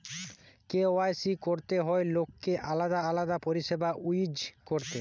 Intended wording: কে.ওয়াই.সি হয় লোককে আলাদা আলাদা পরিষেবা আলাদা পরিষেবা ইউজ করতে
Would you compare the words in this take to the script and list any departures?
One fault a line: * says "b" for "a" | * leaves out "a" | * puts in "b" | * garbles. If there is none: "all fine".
* puts in "করতে"
* leaves out "আলাদা পরিষেবা"